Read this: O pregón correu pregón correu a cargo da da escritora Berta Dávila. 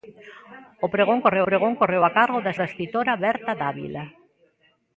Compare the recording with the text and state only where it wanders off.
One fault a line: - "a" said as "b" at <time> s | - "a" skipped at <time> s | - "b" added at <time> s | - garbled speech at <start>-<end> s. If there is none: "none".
none